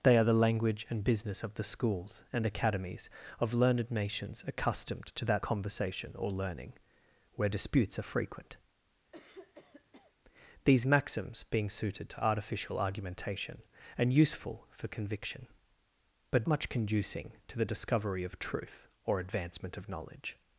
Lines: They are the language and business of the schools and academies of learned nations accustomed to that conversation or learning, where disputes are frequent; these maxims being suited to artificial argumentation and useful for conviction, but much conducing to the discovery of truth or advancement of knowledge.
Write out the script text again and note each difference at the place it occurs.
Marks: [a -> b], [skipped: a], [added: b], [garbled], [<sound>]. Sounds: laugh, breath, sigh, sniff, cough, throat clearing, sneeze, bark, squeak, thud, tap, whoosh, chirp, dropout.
They are the language and business of the schools and academies of learned nations accustomed to that conversation or learning, where disputes are frequent; [throat clearing] these maxims being suited to artificial argumentation and useful for conviction, but much conducing to the discovery of truth or advancement of knowledge.